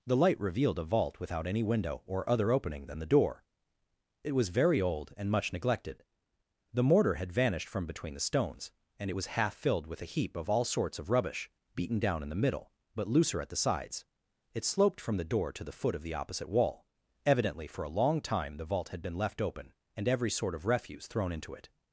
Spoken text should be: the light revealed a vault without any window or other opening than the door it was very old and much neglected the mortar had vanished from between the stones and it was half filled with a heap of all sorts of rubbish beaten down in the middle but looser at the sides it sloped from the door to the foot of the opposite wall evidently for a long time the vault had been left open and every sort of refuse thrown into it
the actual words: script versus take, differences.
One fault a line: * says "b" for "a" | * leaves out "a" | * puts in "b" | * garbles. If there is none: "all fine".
all fine